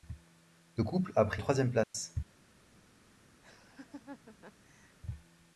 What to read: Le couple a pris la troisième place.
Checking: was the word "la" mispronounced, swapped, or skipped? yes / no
yes